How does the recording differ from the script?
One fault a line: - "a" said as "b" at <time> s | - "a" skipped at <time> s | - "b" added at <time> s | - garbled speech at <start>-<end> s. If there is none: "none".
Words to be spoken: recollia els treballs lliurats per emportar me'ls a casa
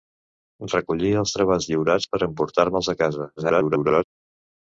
- garbled speech at 3.4-4.0 s